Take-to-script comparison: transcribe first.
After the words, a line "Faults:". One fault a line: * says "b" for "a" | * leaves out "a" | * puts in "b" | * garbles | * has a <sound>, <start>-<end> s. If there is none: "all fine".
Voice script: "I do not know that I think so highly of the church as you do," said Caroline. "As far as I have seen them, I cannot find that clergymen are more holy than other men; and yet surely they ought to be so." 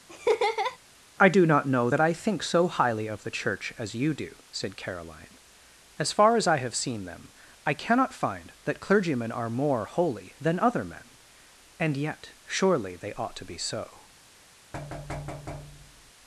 "I do not know that I think so highly of the church as you do," said Caroline. "As far as I have seen them, I cannot find that clergymen are more holy than other men; and yet surely they ought to be so."
Faults:
* has a laugh, 0.1-0.8 s
* has a thud, 14.7-16.1 s